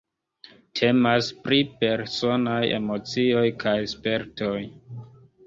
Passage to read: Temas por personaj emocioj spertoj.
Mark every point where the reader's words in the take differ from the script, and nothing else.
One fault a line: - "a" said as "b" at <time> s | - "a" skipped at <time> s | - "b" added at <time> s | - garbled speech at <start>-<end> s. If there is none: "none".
- "por" said as "pri" at 1.4 s
- "kaj" added at 3.7 s